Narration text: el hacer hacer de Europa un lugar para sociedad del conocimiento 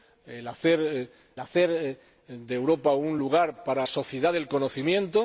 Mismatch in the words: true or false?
false